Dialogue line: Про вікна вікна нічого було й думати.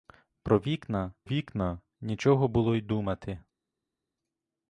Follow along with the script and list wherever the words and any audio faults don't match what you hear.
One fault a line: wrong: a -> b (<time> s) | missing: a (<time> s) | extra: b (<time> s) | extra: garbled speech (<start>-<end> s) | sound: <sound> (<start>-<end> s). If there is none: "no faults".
no faults